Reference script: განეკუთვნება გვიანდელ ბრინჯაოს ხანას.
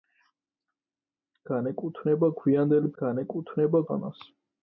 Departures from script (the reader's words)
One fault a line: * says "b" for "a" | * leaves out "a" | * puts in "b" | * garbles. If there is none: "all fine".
* says "განეკუთვნება" for "ბრინჯაოს"